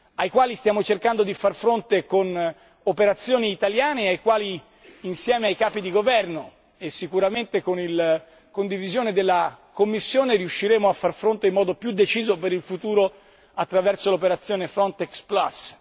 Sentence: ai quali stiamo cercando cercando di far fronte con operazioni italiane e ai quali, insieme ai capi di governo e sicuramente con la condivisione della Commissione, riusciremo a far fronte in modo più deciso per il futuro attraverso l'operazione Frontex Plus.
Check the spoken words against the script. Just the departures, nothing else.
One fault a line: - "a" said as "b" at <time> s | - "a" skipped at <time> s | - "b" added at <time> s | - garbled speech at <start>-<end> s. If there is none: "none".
- "cercando" skipped at 1.2 s